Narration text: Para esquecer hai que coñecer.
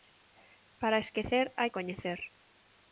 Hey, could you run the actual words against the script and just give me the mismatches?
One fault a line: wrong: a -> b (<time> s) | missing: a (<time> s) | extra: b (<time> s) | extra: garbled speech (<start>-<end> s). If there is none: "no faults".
missing: que (1.7 s)